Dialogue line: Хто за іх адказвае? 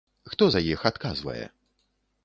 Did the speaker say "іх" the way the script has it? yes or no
yes